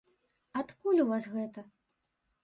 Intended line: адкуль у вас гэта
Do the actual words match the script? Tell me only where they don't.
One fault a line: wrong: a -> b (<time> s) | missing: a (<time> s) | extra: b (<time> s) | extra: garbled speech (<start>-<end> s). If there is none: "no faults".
no faults